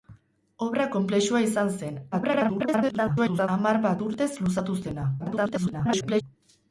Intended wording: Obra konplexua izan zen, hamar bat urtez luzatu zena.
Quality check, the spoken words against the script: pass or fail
fail